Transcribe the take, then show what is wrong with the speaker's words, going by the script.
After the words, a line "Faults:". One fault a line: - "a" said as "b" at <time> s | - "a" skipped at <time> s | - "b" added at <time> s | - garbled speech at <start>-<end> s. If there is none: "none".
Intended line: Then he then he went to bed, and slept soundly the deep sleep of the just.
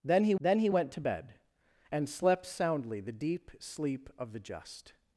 Then he then he went to bed, and slept soundly the deep sleep of the just.
Faults:
none